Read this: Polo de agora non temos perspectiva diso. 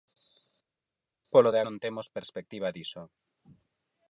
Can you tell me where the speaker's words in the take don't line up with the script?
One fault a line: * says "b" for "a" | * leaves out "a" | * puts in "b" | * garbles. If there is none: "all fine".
* leaves out "agora"